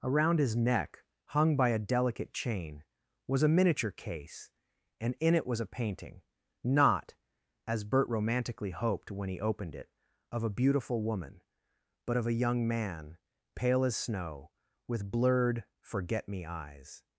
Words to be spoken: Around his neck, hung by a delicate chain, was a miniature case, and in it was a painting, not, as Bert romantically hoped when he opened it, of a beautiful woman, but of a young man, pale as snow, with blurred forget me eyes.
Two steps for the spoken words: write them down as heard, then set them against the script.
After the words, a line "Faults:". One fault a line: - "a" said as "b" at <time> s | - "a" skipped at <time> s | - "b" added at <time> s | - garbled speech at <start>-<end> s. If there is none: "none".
Around his neck, hung by a delicate chain, was a miniature case, and in it was a painting, not, as Bert romantically hoped when he opened it, of a beautiful woman, but of a young man, pale as snow, with blurred forget me eyes.
Faults:
none